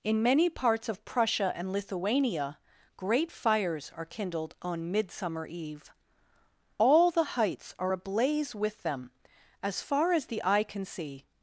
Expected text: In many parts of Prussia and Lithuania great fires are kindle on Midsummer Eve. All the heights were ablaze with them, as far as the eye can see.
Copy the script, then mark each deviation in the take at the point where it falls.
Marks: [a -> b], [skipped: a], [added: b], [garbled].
In many parts of Prussia and Lithuania great fires are [kindle -> kindled] on Midsummer Eve. All the heights [were -> are] ablaze with them, as far as the eye can see.